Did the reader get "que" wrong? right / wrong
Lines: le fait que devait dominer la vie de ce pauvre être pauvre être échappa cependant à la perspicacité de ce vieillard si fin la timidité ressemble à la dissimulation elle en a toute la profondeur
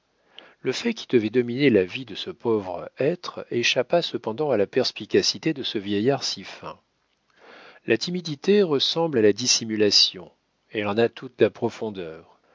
wrong